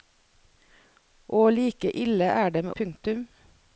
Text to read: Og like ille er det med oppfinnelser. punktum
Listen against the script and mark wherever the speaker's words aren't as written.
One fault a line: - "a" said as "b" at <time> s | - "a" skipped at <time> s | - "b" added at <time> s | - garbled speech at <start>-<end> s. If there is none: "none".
- "oppfinnelser" skipped at 2.7 s